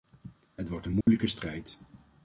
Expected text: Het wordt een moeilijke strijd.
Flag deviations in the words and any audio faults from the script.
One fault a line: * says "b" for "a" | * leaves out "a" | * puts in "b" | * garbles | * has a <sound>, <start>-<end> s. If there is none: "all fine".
* has a dropout, 1.0-1.1 s